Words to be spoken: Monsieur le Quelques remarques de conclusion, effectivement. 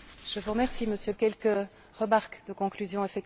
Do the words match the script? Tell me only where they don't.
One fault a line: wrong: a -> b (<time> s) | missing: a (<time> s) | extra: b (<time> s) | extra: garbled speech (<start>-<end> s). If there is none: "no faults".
no faults